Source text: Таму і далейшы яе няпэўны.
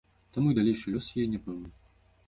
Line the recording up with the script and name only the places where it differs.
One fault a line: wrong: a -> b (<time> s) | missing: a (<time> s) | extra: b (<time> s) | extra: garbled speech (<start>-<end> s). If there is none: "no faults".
extra: лёс (1.0 s)